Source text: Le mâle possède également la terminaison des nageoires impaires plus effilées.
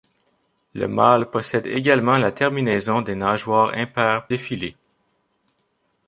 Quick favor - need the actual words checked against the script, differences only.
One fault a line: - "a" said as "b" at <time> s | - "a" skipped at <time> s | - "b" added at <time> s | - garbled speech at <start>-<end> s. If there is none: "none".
- "plus" skipped at 4.3 s